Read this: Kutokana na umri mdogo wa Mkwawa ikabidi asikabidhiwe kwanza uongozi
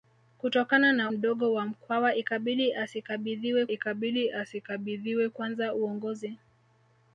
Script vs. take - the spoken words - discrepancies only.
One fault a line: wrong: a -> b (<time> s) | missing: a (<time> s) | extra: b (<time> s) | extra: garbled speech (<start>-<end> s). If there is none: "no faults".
missing: umri (1.1 s)
extra: ikabidi asikabidhiwe (3.7 s)